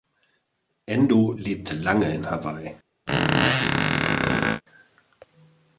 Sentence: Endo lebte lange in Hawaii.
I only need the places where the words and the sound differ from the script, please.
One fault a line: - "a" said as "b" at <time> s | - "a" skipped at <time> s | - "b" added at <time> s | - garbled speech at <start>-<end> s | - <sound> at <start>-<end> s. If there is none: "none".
- squeak at 3.1-4.6 s